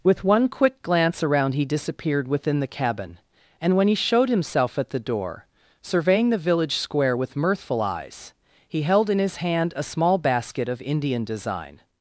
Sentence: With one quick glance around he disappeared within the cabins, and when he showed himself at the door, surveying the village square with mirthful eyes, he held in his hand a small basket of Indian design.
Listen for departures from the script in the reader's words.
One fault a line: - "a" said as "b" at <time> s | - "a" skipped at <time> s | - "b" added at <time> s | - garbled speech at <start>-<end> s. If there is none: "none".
- "cabins" said as "cabin" at 2.7 s